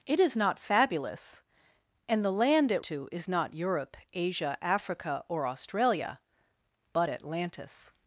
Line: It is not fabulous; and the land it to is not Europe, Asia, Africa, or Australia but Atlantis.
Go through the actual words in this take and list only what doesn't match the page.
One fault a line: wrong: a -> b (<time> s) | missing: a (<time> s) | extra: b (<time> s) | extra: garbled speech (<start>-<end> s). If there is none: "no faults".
no faults